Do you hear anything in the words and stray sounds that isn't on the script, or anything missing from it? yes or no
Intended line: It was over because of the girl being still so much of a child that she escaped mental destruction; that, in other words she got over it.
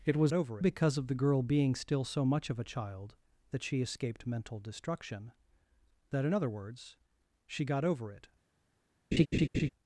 yes